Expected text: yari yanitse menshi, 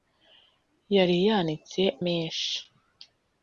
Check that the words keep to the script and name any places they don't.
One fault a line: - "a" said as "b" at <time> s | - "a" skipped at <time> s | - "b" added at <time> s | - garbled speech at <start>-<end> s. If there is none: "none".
none